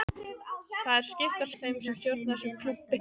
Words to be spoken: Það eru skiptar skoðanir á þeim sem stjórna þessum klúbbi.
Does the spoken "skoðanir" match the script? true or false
false